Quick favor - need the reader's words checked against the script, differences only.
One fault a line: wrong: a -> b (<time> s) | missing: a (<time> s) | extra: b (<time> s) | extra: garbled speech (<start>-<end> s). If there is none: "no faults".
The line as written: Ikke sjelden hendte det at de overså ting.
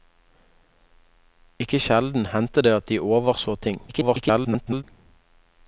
extra: garbled speech (3.9-4.8 s)